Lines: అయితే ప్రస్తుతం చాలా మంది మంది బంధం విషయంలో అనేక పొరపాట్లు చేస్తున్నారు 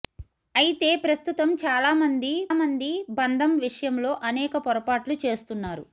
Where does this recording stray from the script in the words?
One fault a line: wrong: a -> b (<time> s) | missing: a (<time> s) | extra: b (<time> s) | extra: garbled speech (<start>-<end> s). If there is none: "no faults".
no faults